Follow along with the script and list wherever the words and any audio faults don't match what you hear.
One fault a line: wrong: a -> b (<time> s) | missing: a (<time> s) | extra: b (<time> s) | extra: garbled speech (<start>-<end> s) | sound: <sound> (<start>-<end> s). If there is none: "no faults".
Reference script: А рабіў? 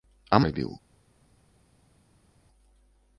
no faults